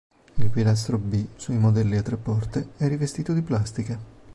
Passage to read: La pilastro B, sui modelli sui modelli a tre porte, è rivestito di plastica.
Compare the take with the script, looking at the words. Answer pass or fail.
fail